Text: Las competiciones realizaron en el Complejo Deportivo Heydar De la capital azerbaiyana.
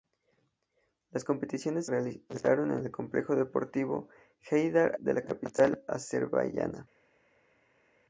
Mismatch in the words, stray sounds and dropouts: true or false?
false